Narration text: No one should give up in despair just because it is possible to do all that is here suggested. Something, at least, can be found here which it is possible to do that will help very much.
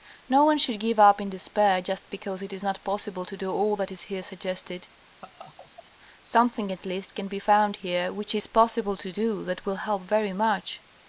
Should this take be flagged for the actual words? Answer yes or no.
yes